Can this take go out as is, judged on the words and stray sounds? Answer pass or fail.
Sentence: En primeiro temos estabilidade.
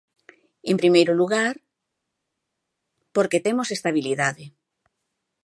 fail